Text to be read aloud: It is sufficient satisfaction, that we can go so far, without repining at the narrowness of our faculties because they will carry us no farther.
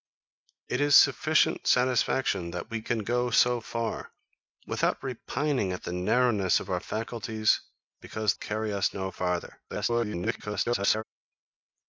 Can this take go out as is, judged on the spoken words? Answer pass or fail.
fail